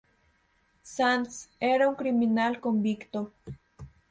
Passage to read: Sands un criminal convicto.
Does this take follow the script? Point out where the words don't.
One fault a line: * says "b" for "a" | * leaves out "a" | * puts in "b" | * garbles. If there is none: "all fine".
* puts in "era"